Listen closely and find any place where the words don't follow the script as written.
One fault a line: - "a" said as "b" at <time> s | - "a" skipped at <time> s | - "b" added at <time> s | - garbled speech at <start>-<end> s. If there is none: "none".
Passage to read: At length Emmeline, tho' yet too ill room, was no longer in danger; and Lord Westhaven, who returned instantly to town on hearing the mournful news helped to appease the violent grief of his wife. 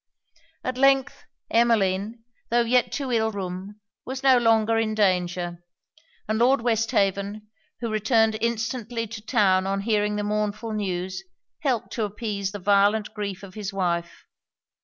none